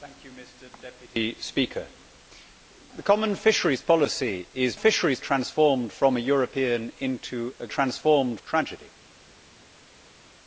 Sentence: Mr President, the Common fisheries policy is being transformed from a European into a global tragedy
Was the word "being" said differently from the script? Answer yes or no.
yes